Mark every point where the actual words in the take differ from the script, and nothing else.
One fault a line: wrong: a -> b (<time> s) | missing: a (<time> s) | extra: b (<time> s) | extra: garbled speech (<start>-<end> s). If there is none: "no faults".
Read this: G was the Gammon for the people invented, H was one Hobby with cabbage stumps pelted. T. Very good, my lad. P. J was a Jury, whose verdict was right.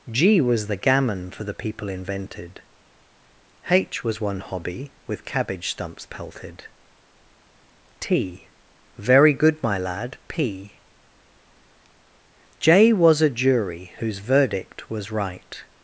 no faults